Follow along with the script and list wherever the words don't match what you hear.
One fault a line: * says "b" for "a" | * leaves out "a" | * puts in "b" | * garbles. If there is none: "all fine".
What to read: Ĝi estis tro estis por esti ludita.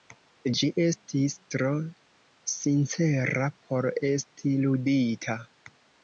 * says "sincera" for "estis"